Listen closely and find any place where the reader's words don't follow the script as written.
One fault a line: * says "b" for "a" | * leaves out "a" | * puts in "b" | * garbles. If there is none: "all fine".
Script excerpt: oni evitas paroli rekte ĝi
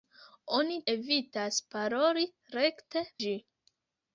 all fine